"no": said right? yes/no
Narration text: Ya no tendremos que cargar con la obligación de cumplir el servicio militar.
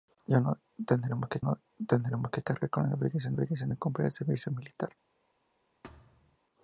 yes